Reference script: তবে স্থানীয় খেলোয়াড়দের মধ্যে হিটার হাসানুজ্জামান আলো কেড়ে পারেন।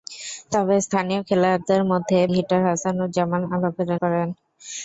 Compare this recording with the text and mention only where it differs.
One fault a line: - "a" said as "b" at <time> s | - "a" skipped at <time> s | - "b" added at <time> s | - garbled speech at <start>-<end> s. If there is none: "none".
none